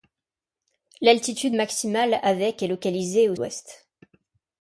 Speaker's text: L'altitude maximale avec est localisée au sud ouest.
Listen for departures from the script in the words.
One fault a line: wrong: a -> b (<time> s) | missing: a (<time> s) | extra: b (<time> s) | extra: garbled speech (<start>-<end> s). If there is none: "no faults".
missing: sud (3.3 s)